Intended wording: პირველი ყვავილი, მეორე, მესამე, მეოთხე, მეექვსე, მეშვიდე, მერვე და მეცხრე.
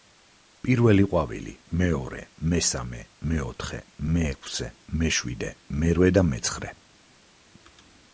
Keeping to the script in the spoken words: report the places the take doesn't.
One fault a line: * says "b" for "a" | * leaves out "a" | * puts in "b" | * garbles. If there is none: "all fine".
all fine